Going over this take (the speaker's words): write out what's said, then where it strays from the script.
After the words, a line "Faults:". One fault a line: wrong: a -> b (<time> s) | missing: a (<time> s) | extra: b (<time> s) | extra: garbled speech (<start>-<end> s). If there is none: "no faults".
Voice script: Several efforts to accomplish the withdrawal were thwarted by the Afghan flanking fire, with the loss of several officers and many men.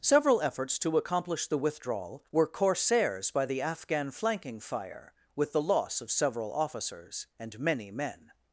Several efforts to accomplish the withdrawal were corsairs by the Afghan flanking fire, with the loss of several officers and many men.
Faults:
wrong: thwarted -> corsairs (2.5 s)